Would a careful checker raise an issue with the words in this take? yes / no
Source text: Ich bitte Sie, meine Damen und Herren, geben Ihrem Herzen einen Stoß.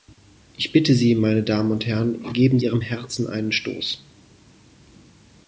no